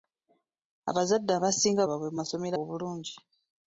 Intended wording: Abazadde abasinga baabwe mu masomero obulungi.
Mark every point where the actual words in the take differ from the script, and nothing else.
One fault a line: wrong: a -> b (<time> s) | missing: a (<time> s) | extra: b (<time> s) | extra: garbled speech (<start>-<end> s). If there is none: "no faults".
no faults